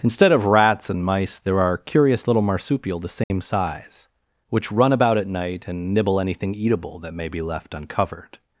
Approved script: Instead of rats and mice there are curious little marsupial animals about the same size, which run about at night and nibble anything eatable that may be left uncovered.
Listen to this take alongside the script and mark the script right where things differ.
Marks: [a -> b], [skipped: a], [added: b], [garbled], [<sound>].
Instead of rats and mice there are curious little marsupial [skipped: animals about] the same [dropout] size, which run about at night and nibble anything eatable that may be left uncovered.